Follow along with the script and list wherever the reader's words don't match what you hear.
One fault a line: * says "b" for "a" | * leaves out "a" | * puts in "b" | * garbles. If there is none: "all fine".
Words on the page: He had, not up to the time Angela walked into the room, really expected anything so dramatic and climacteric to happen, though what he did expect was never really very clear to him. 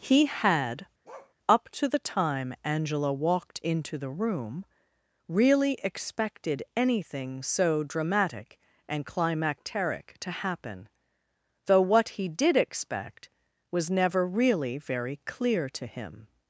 * leaves out "not"